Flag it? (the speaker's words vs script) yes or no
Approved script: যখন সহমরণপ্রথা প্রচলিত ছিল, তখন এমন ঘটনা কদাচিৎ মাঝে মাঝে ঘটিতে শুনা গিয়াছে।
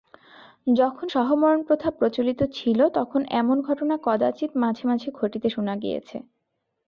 no